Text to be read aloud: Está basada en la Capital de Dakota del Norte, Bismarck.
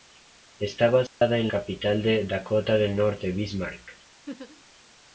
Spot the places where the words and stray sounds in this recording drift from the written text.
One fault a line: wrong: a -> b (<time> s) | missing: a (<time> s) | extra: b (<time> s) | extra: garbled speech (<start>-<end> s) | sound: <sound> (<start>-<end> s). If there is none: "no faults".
sound: dropout (1.1-1.2 s)
missing: la (1.5 s)
sound: laugh (4.3-4.6 s)